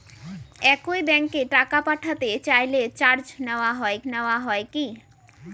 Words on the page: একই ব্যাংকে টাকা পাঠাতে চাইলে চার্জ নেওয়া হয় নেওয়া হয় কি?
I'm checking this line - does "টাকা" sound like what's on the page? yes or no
yes